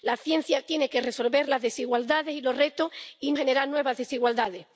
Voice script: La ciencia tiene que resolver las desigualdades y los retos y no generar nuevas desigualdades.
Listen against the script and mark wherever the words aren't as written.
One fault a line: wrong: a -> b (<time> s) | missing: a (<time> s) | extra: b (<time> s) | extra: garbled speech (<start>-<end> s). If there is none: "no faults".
missing: no (3.3 s)